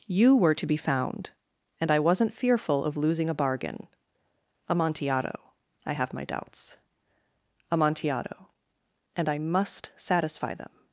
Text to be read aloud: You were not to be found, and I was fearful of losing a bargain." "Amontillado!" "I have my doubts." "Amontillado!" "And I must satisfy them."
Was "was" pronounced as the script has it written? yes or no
no